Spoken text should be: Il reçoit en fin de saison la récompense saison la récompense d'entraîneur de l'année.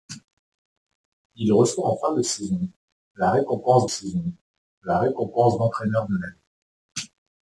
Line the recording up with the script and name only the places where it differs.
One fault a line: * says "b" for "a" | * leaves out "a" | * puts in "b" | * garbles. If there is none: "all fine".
all fine